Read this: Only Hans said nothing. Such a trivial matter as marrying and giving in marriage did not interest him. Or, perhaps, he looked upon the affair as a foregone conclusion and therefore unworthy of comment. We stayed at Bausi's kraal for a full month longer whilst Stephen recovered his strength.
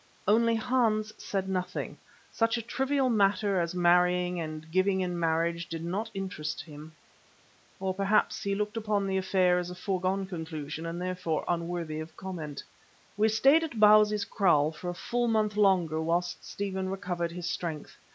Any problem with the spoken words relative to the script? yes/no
no